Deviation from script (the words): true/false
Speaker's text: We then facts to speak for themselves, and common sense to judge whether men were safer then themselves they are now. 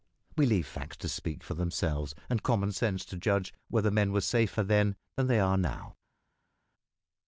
true